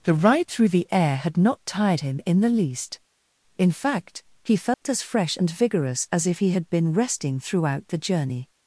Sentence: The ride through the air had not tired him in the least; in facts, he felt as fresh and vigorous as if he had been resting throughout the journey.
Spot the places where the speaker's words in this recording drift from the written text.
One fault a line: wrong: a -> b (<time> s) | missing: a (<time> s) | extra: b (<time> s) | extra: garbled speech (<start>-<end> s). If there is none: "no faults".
wrong: facts -> fact (3.7 s)